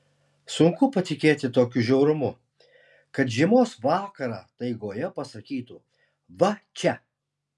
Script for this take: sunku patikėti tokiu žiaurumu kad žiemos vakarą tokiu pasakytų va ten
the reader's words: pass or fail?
fail